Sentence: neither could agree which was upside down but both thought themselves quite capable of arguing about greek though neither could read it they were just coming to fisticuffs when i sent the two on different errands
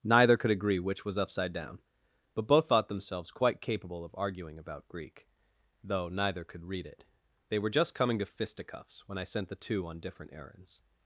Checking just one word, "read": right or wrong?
right